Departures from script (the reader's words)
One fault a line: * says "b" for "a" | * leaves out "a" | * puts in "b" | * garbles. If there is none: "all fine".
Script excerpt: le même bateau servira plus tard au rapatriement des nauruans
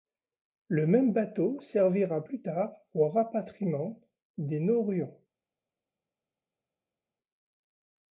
all fine